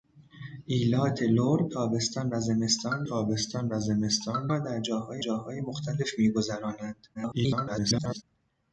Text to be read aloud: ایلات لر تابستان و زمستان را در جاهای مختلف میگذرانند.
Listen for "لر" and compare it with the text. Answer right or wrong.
right